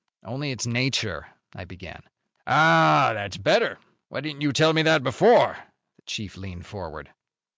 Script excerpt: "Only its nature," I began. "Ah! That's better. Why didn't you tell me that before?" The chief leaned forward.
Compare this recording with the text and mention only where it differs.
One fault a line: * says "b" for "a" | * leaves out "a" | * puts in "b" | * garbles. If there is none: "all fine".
all fine